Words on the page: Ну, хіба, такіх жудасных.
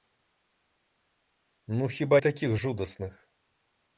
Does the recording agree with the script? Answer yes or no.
yes